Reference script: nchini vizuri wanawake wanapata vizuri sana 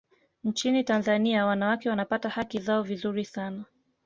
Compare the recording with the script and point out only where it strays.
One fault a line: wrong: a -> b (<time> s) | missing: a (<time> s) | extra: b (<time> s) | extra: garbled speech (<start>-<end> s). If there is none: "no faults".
wrong: vizuri -> tanzania (0.8 s)
extra: haki zao (2.3 s)